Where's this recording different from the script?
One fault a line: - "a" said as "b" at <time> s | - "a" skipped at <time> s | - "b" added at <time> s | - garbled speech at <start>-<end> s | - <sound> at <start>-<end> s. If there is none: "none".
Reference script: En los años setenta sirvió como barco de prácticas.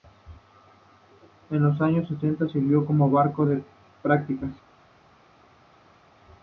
none